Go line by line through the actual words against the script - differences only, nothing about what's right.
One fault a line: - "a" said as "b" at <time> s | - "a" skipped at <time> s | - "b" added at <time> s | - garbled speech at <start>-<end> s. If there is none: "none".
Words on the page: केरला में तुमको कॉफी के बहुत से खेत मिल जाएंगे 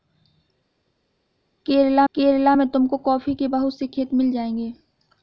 - "केरला" added at 2.1 s